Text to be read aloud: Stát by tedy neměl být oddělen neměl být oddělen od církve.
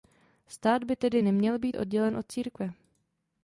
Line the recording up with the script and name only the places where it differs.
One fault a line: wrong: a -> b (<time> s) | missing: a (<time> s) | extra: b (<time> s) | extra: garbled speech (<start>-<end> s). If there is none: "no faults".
missing: neměl být oddělen (2.2 s)